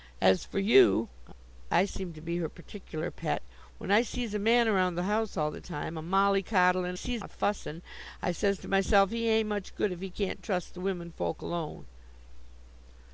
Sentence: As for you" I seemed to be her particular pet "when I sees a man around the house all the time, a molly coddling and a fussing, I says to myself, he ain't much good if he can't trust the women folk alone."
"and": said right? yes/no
no